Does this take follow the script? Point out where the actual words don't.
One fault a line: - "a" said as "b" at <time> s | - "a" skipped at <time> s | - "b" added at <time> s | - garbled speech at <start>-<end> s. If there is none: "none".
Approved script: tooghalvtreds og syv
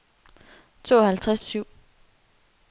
none